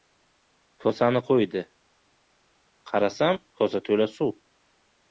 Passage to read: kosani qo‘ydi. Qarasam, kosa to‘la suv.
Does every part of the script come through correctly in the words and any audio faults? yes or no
yes